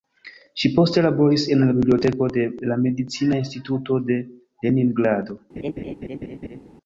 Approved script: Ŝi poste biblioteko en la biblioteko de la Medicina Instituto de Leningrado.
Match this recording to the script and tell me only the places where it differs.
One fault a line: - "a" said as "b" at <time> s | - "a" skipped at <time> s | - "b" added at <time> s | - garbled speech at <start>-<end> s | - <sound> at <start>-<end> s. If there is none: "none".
- "biblioteko" said as "laboris" at 1.1 s
- laugh at 5.6-6.6 s